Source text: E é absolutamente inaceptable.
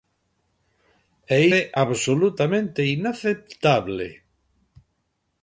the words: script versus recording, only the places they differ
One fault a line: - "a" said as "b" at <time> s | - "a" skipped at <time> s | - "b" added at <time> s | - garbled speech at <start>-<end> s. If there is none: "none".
none